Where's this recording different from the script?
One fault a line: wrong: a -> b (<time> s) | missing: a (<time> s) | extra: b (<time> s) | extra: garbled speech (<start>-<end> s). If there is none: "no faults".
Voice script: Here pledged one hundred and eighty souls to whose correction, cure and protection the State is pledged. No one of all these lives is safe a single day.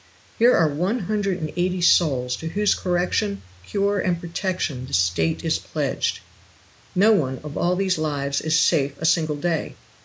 wrong: pledged -> are (0.6 s)